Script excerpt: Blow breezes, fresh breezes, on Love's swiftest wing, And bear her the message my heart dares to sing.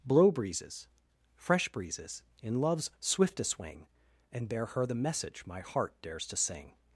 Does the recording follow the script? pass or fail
fail